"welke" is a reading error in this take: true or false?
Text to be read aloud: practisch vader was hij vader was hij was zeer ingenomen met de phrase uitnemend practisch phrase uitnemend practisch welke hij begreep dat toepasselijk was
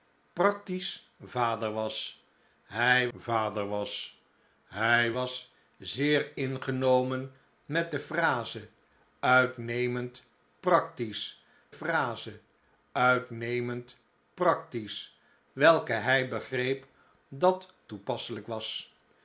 false